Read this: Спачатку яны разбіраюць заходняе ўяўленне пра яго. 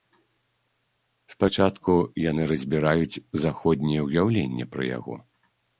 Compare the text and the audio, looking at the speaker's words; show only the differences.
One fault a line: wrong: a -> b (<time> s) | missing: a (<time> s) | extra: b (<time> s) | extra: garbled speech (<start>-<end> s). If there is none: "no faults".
no faults